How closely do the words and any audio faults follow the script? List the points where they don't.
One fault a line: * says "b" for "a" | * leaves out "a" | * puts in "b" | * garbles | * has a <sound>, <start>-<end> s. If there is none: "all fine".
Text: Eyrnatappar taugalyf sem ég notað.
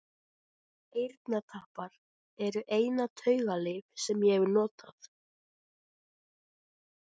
* puts in "eru eina"
* puts in "hef"